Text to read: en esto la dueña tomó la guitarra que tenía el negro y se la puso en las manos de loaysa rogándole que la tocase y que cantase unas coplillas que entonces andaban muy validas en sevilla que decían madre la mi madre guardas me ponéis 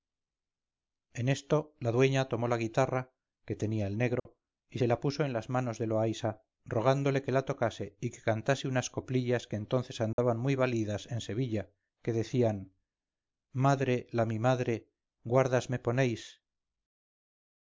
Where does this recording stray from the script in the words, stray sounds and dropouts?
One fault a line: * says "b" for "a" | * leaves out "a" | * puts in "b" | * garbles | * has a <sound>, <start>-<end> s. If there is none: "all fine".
* has a dropout, 4.2-4.3 s
* has a dropout, 10.1-10.2 s